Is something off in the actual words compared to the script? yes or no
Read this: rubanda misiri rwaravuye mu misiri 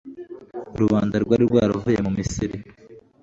yes